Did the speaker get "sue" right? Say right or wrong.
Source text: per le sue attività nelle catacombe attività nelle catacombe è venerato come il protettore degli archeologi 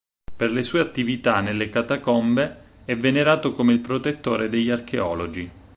right